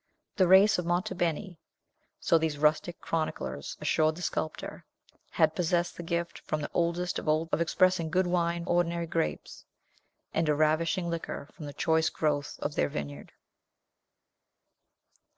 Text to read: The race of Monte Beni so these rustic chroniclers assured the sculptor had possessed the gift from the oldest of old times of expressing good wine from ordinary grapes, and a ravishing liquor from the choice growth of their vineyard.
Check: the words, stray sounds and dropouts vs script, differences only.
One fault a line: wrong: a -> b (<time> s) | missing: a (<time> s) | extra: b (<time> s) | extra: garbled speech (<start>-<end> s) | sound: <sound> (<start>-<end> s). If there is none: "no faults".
missing: times (7.5 s)
missing: from (8.7 s)